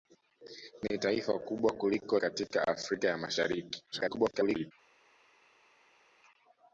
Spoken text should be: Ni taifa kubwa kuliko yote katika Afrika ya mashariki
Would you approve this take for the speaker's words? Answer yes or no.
no